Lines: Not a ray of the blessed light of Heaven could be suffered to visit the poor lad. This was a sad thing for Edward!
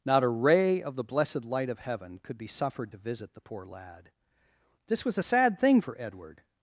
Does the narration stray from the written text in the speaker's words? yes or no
no